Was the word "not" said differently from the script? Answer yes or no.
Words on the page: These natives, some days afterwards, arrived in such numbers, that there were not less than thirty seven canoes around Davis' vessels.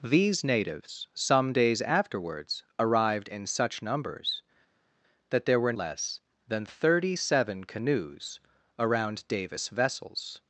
yes